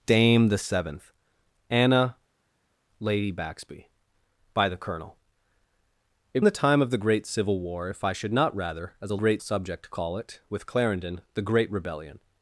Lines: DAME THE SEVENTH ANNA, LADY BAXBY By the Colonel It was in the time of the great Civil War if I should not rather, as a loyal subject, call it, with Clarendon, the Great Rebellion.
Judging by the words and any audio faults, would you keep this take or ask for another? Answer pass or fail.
fail